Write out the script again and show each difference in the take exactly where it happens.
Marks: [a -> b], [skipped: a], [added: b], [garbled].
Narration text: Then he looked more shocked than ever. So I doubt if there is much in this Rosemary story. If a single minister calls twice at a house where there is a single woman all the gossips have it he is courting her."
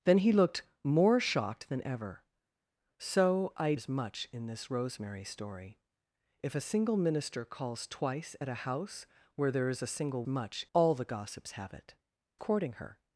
Then he looked more shocked than ever. So I [skipped: doubt if there] is much in this Rosemary story. If a single minister calls twice at a house where there is a single [woman -> much] all the gossips have it [skipped: he is] courting her."